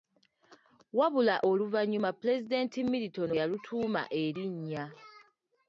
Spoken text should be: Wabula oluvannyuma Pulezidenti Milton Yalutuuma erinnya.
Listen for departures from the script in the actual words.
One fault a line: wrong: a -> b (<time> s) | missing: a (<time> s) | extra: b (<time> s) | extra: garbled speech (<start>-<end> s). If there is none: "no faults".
no faults